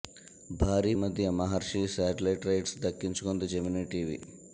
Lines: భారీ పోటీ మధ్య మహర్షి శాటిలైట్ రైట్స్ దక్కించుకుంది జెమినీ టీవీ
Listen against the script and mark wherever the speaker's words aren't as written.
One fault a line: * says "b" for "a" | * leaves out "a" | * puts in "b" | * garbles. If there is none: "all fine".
* leaves out "పోటీ"